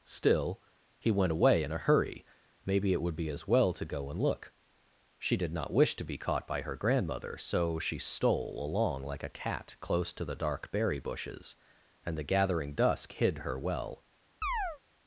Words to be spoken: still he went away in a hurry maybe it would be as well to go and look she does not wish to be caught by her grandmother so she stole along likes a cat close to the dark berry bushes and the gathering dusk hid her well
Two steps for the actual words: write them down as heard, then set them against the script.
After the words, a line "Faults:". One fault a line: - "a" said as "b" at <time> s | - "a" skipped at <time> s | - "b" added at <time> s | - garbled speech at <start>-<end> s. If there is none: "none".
still he went away in a hurry maybe it would be as well to go and look she did not wish to be caught by her grandmother so she stole along like a cat close to the dark berry bushes and the gathering dusk hid her well
Faults:
- "does" said as "did" at 5.4 s
- "likes" said as "like" at 9.0 s